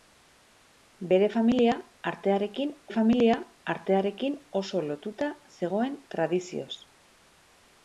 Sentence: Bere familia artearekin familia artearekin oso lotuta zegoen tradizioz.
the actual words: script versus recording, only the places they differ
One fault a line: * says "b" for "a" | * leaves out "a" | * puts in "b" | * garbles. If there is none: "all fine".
all fine